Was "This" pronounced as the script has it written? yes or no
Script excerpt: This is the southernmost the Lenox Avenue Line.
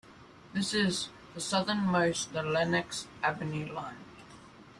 yes